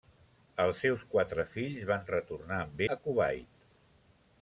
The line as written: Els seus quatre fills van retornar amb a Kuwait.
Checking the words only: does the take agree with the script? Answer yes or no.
yes